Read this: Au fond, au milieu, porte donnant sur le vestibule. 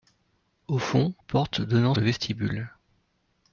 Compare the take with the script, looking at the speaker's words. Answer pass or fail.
fail